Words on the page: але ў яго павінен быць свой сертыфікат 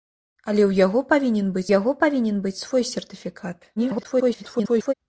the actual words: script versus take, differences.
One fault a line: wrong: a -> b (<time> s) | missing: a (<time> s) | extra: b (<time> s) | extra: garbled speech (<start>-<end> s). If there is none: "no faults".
extra: яго павінен быць (1.8 s)
extra: garbled speech (3.8-4.9 s)